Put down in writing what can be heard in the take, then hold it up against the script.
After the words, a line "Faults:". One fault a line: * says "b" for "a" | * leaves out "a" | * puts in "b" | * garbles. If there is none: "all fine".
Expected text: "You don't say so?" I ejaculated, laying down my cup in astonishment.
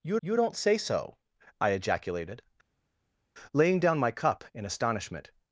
"You you don't say so?" I ejaculated, laying down my cup in astonishment.
Faults:
* puts in "you"